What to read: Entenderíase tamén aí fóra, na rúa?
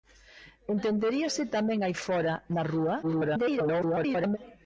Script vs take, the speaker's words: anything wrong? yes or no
yes